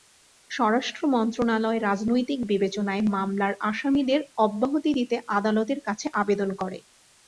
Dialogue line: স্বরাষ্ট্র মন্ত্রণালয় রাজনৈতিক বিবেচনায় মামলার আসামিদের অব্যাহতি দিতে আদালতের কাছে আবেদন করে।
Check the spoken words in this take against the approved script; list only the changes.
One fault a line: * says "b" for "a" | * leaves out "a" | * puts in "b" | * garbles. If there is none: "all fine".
all fine